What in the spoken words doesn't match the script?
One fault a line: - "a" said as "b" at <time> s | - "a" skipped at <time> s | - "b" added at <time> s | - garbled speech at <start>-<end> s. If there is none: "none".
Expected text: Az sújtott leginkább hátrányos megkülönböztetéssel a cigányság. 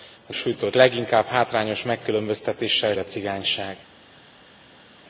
none